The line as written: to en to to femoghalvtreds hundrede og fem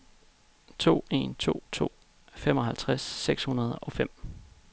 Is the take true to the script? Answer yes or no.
no